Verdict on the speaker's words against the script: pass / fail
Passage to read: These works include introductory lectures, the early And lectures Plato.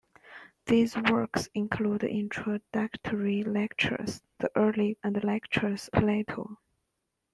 pass